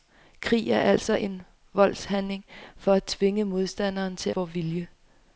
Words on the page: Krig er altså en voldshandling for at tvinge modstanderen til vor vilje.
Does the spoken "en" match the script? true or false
true